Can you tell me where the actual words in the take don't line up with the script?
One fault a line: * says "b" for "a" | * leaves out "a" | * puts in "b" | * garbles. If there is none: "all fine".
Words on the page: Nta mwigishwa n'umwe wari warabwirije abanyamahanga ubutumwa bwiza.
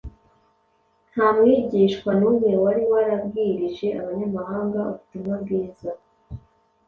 all fine